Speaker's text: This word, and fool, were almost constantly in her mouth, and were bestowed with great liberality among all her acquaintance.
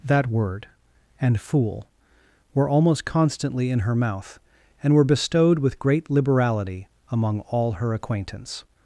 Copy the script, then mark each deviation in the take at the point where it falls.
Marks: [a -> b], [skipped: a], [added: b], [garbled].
[This -> That] word, and fool, were almost constantly in her mouth, and were bestowed with great liberality among all her acquaintance.